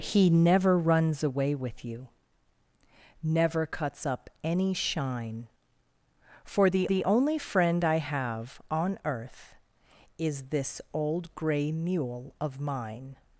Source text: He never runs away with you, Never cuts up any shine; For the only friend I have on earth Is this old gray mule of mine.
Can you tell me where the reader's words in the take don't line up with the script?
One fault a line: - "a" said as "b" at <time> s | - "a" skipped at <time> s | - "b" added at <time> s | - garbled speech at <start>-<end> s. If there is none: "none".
- "the" added at 6.9 s